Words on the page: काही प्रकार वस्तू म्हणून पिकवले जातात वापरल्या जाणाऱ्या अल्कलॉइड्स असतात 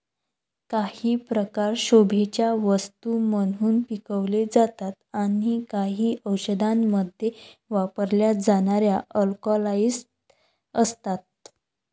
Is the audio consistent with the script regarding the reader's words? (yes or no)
no